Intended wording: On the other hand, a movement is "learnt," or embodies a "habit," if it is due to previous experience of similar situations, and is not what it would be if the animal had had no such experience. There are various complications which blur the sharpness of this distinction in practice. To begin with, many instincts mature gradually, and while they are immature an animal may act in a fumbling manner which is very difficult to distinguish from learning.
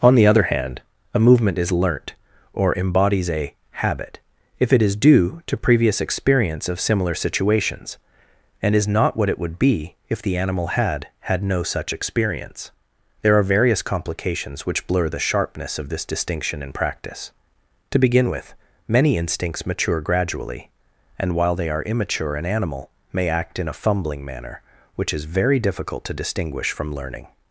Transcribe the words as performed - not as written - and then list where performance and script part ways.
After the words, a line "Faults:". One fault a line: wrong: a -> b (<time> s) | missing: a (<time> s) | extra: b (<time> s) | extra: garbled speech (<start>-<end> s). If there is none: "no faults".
On the other hand, a movement is "learnt," or embodies a "habit," if it is due to previous experience of similar situations, and is not what it would be if the animal had had no such experience. There are various complications which blur the sharpness of this distinction in practice. To begin with, many instincts mature gradually, and while they are immature an animal may act in a fumbling manner which is very difficult to distinguish from learning.
Faults:
no faults